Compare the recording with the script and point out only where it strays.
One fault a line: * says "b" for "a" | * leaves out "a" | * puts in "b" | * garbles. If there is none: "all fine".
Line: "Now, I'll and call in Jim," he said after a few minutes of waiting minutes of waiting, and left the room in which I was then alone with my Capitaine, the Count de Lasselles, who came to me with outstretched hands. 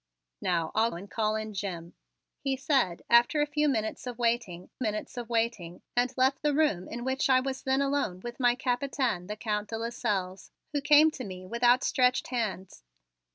all fine